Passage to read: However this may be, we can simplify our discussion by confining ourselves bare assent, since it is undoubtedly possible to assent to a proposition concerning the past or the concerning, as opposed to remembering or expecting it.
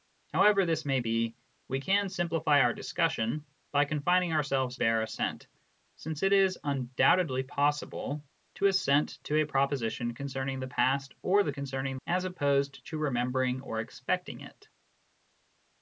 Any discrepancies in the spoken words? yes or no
no